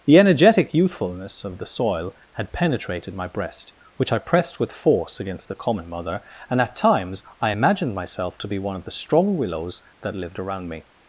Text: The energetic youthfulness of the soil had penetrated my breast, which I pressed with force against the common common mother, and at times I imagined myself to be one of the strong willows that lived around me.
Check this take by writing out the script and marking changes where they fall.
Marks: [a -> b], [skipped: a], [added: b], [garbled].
The energetic youthfulness of the soil had penetrated my breast, which I pressed with force against the common [skipped: common] mother, and at times I imagined myself to be one of the strong willows that lived around me.